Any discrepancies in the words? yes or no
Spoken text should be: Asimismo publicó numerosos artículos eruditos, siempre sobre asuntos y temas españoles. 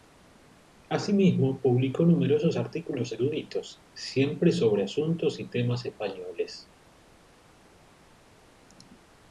no